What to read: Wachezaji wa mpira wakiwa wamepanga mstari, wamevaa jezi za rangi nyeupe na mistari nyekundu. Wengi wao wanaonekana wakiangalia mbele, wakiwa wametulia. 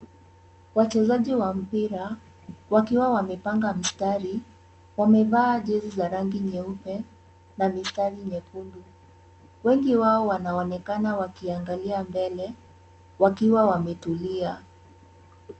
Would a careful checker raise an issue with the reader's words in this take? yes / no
no